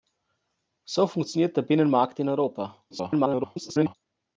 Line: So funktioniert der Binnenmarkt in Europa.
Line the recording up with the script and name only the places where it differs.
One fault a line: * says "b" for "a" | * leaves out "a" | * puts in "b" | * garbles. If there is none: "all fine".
* garbles